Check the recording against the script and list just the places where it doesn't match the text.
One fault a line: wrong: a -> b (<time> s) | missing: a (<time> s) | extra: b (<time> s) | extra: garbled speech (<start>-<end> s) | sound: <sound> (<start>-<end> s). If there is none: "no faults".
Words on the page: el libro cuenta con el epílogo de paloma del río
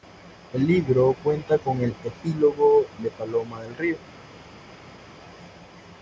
no faults